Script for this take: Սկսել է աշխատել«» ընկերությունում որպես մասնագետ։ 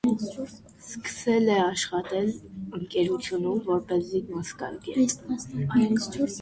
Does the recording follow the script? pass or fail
pass